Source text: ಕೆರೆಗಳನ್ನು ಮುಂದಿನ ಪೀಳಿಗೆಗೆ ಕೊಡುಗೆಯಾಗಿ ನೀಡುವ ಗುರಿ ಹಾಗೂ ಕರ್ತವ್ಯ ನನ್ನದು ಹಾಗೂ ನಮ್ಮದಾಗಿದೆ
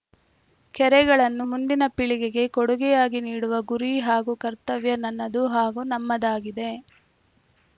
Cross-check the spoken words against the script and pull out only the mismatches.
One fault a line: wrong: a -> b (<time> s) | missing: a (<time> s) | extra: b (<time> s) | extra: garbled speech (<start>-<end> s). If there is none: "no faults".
no faults